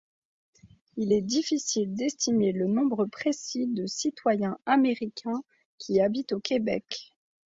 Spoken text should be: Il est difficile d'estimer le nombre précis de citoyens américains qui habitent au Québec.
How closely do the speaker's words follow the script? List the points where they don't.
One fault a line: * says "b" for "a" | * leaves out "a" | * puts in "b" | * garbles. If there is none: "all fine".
all fine